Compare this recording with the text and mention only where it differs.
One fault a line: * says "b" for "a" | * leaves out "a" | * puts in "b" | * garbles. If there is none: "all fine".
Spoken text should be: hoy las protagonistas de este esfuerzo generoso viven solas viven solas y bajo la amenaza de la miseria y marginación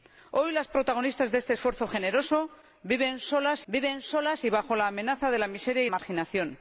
all fine